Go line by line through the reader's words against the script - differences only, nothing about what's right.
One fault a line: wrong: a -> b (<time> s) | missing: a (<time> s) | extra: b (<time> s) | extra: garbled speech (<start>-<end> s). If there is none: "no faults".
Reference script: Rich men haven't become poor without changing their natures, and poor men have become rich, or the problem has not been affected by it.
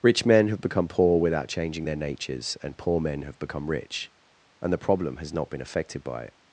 wrong: haven't -> have (0.5 s)
wrong: or -> and (4.6 s)